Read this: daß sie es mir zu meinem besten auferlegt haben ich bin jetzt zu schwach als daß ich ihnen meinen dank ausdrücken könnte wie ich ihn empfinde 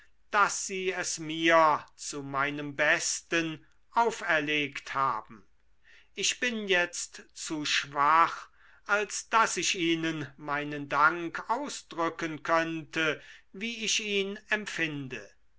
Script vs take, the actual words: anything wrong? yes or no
no